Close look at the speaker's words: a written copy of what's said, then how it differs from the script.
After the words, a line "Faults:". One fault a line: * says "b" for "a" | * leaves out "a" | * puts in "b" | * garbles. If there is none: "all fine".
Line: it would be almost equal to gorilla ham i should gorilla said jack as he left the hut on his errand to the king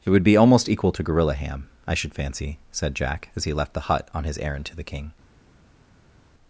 it would be almost equal to gorilla ham i should fancy said jack as he left the hut on his errand to the king
Faults:
* says "fancy" for "gorilla"